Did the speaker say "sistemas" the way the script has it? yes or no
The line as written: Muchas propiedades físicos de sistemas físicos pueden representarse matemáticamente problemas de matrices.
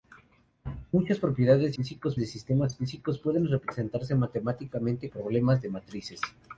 yes